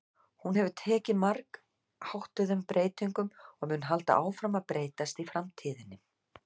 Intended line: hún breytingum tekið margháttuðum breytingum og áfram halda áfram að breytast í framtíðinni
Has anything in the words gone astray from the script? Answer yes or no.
yes